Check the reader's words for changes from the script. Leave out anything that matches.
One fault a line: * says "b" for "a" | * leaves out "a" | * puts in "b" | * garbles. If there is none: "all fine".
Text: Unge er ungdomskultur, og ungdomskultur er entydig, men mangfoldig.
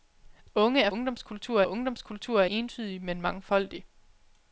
all fine